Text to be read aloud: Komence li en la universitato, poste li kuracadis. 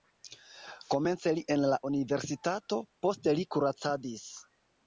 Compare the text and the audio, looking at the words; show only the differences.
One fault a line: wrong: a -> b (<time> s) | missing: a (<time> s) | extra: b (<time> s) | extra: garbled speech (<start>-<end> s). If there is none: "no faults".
no faults